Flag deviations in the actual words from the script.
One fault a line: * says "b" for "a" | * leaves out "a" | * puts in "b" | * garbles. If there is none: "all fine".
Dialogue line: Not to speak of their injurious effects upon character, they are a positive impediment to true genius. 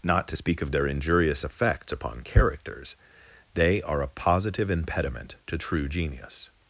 * says "characters" for "character"